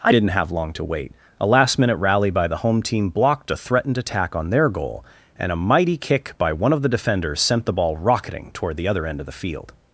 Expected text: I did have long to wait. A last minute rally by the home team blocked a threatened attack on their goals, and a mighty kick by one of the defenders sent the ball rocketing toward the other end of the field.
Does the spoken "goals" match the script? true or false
false